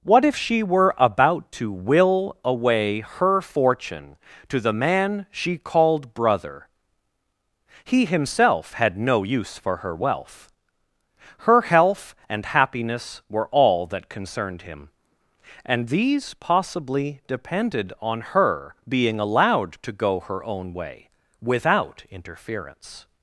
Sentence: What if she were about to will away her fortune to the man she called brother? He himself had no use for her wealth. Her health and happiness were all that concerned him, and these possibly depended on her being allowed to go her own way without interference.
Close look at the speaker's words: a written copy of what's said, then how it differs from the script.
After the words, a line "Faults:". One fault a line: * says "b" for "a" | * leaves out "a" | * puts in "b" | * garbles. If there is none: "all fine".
What if she were about to will away her fortune to the man she called brother? He himself had no use for her wealth. Her health and happiness were all that concerned him, and these possibly depended on her being allowed to go her own way without interference.
Faults:
all fine